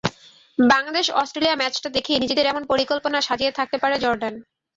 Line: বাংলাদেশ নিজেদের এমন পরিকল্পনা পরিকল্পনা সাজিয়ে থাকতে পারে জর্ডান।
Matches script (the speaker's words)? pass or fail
fail